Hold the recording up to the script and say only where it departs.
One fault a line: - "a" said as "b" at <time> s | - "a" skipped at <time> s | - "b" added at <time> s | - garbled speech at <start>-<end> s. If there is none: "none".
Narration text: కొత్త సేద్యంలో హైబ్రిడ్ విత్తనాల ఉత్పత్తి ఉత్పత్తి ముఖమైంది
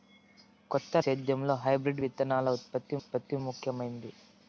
none